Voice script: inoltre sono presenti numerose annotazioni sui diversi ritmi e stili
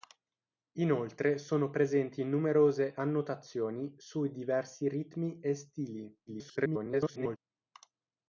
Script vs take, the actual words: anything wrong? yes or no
yes